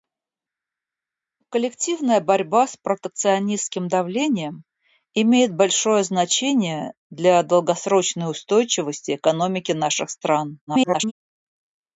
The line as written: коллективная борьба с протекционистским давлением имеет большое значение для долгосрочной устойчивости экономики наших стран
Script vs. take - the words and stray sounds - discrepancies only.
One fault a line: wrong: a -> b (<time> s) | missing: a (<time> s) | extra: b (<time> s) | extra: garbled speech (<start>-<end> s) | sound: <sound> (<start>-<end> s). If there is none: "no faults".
extra: garbled speech (10.7-11.1 s)